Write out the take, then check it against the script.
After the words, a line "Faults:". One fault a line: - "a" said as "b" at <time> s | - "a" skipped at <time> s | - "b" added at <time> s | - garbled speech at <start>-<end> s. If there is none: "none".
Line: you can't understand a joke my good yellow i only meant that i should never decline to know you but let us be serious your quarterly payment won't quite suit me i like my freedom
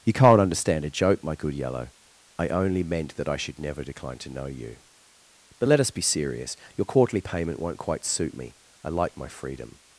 you can't understand a joke my good yellow i only meant that i should never decline to know you but let us be serious your quarterly payment won't quite suit me i like my freedom
Faults:
none